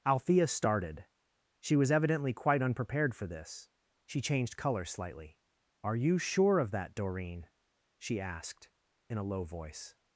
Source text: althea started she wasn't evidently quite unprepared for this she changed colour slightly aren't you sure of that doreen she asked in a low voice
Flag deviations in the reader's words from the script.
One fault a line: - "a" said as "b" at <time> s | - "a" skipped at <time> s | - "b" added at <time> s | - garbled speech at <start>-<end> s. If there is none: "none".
- "wasn't" said as "was" at 1.8 s
- "aren't" said as "are" at 5.8 s